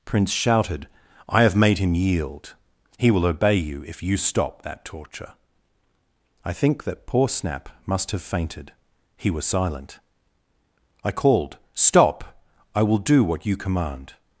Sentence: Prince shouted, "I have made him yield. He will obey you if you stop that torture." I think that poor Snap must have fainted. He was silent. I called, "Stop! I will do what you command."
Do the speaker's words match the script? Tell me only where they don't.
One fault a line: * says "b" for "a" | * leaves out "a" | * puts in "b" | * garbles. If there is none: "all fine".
all fine